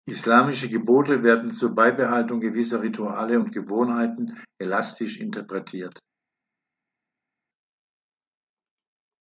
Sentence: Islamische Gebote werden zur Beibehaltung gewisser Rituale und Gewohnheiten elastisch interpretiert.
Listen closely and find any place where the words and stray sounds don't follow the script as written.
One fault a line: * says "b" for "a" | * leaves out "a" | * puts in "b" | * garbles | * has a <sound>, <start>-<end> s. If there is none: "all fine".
all fine